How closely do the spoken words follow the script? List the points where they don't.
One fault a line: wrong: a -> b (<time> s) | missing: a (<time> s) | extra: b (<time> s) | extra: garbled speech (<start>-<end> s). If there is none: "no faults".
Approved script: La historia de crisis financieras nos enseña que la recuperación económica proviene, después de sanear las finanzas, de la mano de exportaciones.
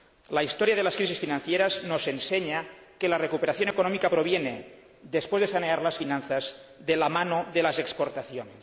extra: las (0.8 s)
extra: las (7.6 s)